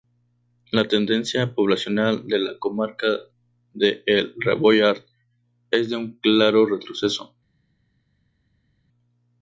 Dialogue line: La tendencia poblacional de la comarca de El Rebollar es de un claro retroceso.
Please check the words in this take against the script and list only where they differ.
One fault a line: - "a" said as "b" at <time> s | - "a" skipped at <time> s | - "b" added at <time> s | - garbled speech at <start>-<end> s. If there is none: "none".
none